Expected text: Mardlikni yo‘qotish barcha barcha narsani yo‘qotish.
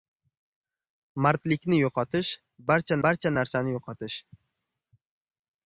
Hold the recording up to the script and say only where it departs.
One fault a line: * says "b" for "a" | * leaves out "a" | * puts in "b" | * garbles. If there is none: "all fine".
all fine